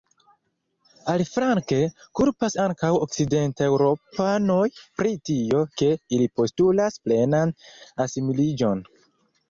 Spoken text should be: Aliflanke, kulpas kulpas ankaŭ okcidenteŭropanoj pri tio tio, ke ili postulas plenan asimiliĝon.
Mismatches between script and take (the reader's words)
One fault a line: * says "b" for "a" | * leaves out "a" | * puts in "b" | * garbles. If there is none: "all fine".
* leaves out "kulpas"
* leaves out "tio"